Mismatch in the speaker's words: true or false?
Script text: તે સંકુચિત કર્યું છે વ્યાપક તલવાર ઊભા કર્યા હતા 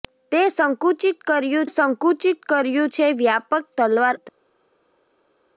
true